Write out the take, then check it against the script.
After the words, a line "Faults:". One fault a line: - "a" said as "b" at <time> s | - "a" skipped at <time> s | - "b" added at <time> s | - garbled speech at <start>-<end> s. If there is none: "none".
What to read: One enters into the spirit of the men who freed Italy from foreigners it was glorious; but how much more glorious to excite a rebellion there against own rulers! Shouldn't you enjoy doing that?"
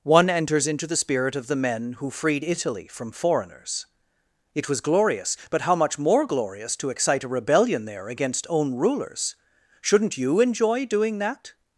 One enters into the spirit of the men who freed Italy from foreigners it was glorious; but how much more glorious to excite a rebellion there against own rulers! Shouldn't you enjoy doing that?"
Faults:
none